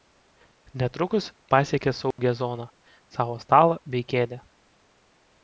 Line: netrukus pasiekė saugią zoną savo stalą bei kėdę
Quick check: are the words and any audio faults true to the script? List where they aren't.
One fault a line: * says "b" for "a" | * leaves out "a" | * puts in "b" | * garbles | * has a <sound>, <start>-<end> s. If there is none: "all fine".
* has a dropout, 2.1-2.2 s